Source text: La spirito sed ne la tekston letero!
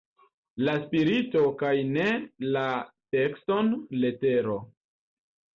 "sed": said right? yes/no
no